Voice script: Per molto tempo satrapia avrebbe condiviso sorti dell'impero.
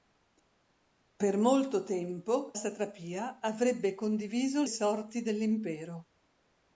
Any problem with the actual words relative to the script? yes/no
no